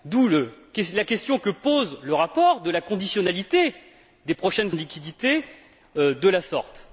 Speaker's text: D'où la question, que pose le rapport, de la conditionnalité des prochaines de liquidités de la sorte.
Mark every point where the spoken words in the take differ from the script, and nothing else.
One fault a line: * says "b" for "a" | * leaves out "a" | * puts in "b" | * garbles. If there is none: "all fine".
all fine